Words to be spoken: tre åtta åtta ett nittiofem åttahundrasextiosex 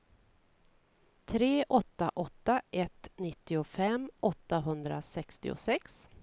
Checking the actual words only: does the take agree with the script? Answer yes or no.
yes